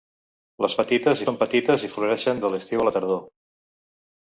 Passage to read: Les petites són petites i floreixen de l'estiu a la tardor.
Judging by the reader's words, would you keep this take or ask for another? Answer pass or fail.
pass